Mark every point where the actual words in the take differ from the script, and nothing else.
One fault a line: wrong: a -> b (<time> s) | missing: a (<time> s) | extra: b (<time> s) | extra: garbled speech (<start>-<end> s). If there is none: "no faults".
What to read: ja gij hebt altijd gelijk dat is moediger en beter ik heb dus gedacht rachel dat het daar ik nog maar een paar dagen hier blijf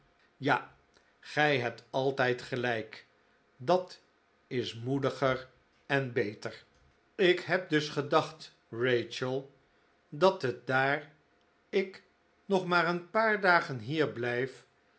no faults